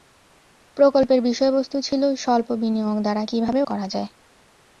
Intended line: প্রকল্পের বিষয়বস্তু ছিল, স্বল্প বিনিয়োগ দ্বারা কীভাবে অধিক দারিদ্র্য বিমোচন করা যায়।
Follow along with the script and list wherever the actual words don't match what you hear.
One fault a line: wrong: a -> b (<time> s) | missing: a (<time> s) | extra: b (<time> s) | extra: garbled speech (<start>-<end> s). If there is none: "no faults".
missing: অধিক দারিদ্র্য বিমোচন (3.6 s)